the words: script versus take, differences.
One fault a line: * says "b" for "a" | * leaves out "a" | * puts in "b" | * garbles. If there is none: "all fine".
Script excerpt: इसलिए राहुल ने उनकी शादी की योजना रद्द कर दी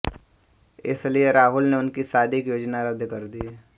all fine